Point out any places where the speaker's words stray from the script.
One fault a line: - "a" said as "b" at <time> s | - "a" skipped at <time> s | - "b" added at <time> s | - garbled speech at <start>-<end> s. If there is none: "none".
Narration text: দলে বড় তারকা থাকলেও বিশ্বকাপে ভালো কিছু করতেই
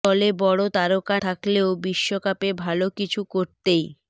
none